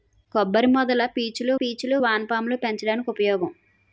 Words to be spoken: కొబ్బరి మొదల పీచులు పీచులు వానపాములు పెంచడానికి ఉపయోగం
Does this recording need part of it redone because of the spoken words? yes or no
no